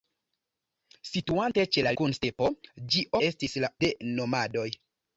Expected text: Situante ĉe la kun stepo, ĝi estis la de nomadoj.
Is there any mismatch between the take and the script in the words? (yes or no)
no